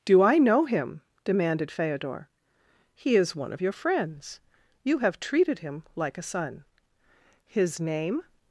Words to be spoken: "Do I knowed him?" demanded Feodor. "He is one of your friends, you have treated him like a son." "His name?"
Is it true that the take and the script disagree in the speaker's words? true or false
true